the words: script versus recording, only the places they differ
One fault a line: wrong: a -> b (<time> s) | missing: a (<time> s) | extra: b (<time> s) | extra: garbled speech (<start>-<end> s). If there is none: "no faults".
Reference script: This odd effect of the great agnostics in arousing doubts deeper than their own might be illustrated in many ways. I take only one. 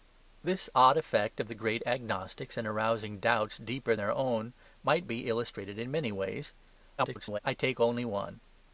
missing: than (4.0 s)
extra: garbled speech (7.0-7.4 s)